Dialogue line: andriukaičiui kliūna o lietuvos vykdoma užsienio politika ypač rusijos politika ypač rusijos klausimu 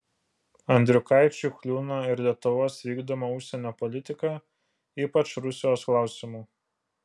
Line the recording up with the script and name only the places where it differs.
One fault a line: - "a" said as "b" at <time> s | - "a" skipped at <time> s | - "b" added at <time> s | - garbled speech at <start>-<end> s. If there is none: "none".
- "o" said as "ir" at 2.1 s
- "politika ypač rusijos" skipped at 5.9 s